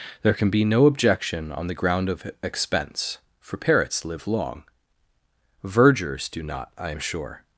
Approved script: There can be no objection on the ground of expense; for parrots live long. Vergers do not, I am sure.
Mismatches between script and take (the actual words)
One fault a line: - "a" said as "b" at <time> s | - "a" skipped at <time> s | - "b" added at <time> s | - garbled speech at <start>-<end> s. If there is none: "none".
none